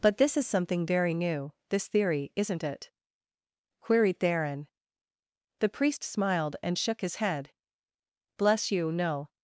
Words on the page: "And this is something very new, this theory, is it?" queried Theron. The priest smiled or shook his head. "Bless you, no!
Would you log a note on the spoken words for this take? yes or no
yes